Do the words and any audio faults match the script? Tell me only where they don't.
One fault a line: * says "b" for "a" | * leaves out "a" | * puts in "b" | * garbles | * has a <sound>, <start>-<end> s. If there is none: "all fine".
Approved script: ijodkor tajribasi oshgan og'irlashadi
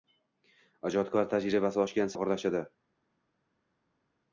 all fine